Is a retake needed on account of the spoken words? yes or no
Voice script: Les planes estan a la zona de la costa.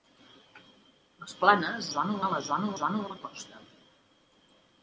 yes